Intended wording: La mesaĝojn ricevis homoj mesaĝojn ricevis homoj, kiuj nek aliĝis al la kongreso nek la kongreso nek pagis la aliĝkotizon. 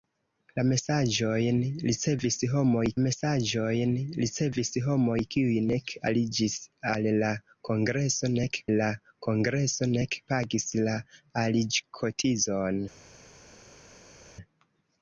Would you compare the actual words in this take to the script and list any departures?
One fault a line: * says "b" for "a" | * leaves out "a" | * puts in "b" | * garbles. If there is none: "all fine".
all fine